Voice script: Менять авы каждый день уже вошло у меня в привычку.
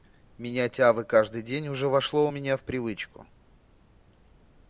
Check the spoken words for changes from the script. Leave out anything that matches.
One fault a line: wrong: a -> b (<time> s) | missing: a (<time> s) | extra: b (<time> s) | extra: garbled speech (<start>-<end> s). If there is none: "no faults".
no faults